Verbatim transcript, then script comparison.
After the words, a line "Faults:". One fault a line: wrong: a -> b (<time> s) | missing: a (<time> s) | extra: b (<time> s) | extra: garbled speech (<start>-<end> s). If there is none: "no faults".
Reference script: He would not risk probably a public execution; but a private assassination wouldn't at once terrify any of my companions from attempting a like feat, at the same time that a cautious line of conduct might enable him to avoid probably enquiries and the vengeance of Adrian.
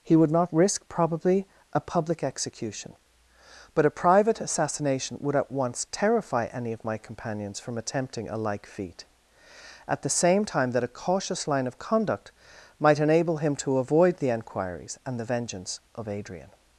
He would not risk probably a public execution; but a private assassination would at once terrify any of my companions from attempting a like feat, at the same time that a cautious line of conduct might enable him to avoid the enquiries and the vengeance of Adrian.
Faults:
wrong: wouldn't -> would (5.2 s)
wrong: probably -> the (14.2 s)